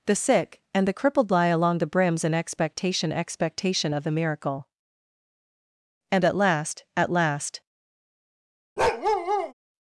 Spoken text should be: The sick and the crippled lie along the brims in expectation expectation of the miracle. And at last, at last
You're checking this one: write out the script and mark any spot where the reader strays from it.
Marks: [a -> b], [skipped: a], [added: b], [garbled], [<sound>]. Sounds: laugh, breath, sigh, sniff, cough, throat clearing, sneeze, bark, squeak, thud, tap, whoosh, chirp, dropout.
The sick and the crippled lie along the brims in expectation expectation of the miracle. And at last, at last [bark]